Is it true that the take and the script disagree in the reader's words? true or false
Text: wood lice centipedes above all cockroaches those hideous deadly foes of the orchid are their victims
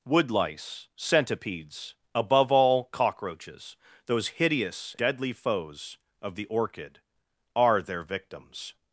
false